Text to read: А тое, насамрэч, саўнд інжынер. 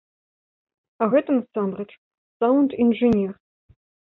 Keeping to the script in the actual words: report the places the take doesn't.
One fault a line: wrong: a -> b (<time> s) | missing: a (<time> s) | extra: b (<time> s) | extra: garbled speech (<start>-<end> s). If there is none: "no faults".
wrong: тое -> гэта (1.1 s)